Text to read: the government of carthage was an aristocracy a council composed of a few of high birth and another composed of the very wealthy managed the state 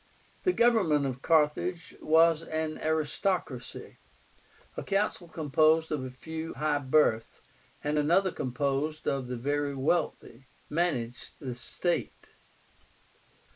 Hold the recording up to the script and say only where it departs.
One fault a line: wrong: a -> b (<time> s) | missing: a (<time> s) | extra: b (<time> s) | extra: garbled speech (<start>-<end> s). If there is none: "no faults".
missing: of (6.5 s)